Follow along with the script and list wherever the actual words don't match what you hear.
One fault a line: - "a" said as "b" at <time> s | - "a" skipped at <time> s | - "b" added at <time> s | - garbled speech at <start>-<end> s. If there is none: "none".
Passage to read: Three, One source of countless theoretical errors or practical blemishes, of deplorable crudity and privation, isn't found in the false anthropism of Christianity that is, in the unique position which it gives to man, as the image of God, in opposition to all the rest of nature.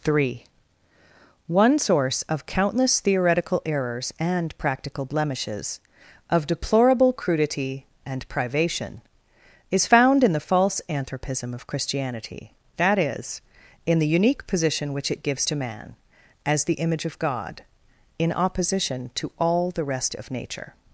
- "or" said as "and" at 4.2 s
- "isn't" said as "is" at 9.7 s